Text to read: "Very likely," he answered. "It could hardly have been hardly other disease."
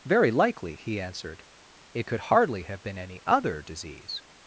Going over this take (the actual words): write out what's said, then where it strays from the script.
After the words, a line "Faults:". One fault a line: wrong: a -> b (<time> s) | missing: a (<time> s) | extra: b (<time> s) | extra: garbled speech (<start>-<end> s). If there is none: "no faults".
"Very likely," he answered. "It could hardly have been any other disease."
Faults:
wrong: hardly -> any (3.0 s)